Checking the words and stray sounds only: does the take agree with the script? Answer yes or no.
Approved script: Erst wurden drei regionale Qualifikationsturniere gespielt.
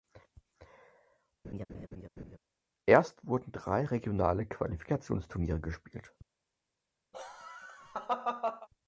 no